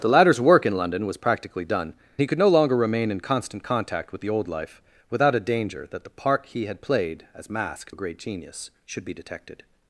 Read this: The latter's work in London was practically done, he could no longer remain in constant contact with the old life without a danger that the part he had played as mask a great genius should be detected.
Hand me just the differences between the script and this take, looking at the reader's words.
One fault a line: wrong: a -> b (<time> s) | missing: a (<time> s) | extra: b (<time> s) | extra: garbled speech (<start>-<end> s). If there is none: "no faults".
no faults